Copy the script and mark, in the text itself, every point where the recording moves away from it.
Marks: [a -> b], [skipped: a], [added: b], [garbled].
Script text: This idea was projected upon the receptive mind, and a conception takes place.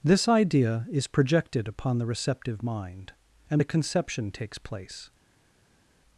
This idea [was -> is] projected upon the receptive mind, and a conception takes place.